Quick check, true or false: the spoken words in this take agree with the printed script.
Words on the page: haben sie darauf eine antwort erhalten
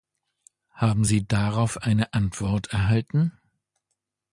true